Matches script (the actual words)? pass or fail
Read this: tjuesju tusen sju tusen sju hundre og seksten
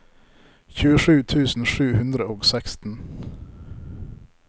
fail